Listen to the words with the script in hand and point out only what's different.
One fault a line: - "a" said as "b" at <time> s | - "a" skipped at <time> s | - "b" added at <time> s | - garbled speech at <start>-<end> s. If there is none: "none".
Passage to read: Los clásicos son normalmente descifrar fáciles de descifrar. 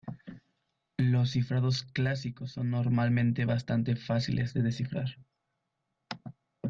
- "cifrados" added at 1.3 s
- "descifrar" said as "bastante" at 3.4 s